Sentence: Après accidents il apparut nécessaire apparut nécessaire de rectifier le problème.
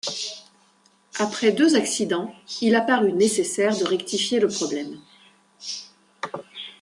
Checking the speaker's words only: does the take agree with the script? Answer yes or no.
no